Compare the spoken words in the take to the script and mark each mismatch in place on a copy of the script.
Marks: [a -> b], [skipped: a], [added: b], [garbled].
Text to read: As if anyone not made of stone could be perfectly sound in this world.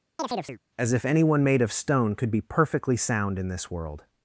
As if anyone [skipped: not] made of stone could be perfectly sound in this world.